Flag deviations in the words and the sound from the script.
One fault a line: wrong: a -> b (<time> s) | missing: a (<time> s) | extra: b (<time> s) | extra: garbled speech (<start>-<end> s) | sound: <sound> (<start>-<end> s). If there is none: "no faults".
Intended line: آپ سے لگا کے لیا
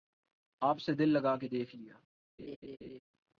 extra: دل (0.9 s)
extra: دیکھ (1.5 s)
sound: laugh (2.4-3.0 s)